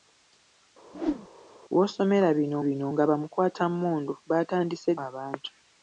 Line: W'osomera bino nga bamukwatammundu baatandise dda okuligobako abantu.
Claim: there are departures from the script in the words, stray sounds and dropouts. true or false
true